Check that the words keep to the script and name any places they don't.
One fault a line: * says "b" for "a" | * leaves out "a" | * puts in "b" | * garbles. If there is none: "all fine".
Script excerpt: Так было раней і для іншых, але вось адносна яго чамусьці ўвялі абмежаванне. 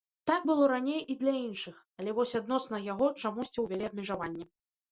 all fine